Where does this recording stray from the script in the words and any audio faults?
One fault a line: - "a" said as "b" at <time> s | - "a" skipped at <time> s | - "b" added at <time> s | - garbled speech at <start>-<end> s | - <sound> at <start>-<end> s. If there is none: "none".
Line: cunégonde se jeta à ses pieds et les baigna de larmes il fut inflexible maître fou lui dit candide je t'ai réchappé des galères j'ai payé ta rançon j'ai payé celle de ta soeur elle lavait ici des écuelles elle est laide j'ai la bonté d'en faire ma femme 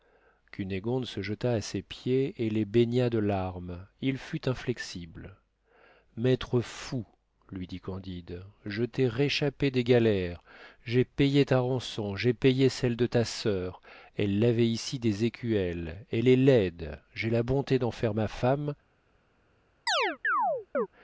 - chirp at 19.9-20.9 s